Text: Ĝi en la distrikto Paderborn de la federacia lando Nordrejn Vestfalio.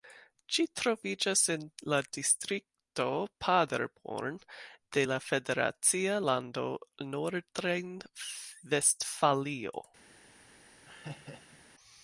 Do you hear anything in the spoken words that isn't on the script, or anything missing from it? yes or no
yes